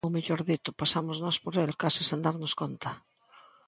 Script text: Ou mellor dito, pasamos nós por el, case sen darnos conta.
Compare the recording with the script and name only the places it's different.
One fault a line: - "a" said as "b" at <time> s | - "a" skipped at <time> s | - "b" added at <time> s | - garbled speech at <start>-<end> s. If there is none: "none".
none